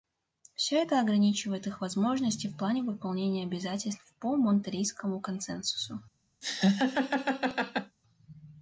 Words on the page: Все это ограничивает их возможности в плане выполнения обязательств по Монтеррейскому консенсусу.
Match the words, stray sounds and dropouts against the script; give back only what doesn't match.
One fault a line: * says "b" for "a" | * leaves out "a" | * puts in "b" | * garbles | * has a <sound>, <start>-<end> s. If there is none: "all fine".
* has a laugh, 6.4-8.0 s